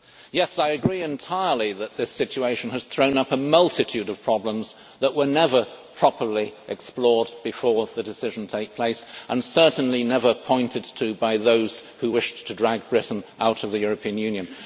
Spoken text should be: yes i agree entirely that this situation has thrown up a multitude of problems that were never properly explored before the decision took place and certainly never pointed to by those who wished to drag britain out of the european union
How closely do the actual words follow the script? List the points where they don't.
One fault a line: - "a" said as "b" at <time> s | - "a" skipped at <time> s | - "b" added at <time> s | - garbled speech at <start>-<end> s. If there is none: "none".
none